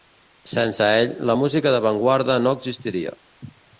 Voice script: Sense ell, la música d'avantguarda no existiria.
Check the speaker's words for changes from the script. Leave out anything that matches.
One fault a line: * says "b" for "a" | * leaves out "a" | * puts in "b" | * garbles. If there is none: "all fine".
all fine